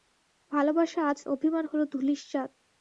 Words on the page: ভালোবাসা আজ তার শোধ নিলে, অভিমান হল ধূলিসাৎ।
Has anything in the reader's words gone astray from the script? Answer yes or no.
yes